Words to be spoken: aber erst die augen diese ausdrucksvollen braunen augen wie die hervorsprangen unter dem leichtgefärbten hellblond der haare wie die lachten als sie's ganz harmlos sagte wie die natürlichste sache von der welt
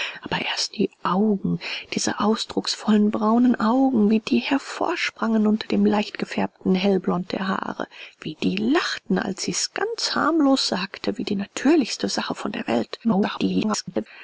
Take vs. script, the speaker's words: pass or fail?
fail